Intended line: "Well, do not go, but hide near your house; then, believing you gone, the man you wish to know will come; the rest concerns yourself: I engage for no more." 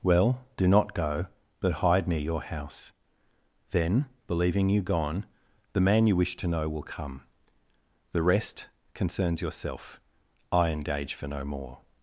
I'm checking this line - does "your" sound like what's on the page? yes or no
yes